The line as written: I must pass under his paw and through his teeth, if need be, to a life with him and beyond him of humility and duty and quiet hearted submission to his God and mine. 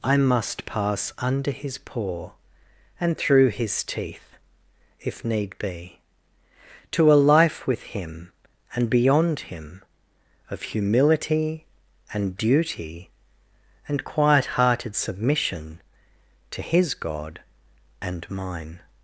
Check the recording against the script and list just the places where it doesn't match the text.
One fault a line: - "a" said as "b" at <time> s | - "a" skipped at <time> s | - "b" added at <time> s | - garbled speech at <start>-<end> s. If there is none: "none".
none